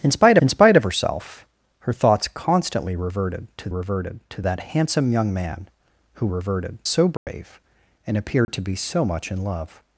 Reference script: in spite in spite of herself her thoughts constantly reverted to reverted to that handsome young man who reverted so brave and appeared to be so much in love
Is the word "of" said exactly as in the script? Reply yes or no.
yes